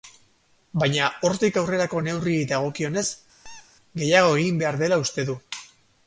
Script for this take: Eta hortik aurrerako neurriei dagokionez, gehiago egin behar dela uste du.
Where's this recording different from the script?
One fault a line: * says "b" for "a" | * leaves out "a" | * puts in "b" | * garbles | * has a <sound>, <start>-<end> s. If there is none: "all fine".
* says "Baina" for "Eta"
* has a squeak, 3.4-3.7 s